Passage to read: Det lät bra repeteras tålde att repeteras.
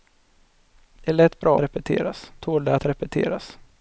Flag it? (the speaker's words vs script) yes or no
no